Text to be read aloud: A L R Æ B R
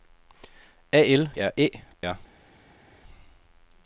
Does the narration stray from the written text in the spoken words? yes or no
no